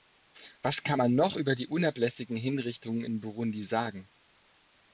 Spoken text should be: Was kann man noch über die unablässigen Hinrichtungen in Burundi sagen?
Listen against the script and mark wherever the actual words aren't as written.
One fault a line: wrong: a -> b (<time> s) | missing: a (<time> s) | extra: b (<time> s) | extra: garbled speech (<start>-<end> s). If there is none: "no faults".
no faults